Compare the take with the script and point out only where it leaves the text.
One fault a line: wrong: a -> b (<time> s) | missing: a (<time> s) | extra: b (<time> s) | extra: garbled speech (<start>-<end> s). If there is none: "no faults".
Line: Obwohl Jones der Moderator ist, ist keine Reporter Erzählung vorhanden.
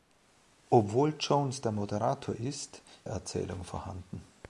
missing: ist keine Reporter (2.8 s)